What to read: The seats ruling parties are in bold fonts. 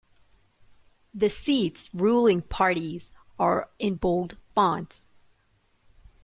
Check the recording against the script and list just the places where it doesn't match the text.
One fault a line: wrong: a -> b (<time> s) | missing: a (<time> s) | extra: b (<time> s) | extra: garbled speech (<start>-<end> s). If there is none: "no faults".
no faults